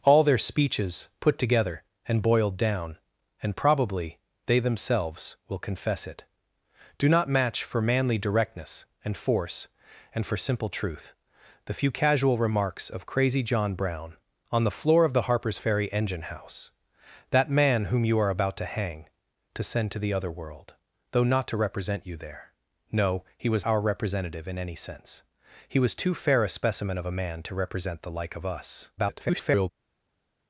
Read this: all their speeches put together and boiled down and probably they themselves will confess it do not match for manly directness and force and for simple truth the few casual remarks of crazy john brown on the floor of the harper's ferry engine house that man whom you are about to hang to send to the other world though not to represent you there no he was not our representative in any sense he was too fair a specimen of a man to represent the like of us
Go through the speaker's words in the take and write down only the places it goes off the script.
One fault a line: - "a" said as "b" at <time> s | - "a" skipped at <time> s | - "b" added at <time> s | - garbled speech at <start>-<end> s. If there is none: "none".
- "not" skipped at 23.6 s
- garbled speech at 29.0-29.7 s